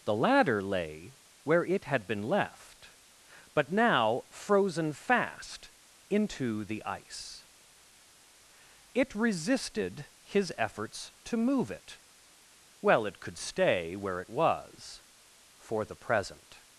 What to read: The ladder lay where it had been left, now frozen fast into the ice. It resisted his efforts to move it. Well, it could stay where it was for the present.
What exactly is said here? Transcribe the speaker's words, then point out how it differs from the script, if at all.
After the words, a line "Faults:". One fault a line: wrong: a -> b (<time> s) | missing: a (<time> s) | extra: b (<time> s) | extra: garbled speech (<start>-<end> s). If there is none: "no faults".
The ladder lay where it had been left, but now frozen fast into the ice. It resisted his efforts to move it. Well, it could stay where it was for the present.
Faults:
extra: but (3.5 s)